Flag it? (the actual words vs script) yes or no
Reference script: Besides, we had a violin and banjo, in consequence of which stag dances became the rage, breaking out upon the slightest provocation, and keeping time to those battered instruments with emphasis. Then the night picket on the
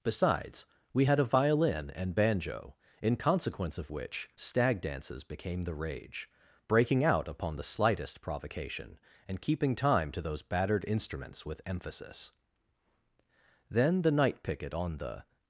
no